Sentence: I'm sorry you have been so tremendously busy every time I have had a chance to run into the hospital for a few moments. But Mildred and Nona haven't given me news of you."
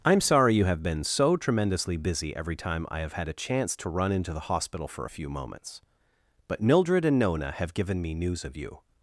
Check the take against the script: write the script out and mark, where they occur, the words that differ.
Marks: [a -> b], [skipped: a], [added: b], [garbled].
I'm sorry you have been so tremendously busy every time I have had a chance to run into the hospital for a few moments. But Mildred and Nona [haven't -> have] given me news of you."